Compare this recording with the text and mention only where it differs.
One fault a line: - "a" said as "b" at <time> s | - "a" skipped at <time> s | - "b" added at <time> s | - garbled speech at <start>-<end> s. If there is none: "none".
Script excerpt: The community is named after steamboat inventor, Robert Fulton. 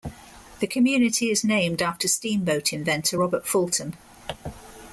none